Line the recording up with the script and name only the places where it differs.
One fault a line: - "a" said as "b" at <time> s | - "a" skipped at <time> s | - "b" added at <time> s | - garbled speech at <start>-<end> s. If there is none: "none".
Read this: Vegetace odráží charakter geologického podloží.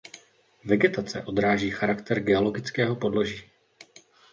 none